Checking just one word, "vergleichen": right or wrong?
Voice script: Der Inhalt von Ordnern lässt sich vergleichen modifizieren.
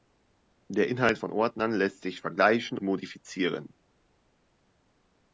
right